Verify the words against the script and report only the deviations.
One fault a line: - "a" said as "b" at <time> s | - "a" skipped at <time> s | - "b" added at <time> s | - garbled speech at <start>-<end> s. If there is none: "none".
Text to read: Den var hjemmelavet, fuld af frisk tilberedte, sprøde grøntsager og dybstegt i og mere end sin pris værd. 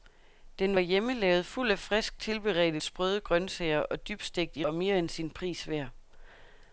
none